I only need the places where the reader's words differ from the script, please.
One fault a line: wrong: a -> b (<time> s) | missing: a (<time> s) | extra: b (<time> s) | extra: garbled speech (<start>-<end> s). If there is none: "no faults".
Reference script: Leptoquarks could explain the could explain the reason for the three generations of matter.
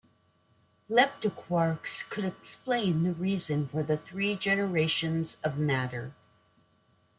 missing: could explain the (3.1 s)